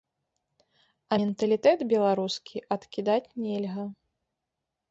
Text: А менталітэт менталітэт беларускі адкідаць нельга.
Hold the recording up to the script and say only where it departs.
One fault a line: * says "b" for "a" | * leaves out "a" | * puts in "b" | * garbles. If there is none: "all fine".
* leaves out "менталітэт"